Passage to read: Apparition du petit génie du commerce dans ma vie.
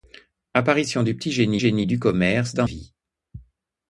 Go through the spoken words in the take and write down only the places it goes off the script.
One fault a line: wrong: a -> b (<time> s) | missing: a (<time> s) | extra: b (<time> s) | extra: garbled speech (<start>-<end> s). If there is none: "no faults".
extra: génie (1.6 s)
missing: ma (2.7 s)